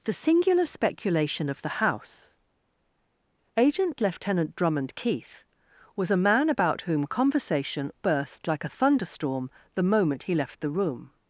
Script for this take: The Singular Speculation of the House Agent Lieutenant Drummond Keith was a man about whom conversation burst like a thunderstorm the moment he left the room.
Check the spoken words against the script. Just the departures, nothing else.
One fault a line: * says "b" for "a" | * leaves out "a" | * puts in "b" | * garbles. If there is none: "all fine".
all fine